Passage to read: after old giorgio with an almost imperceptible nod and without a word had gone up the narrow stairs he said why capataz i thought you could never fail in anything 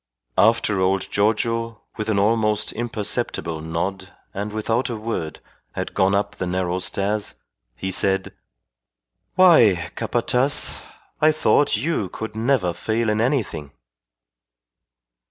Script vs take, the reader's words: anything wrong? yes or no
no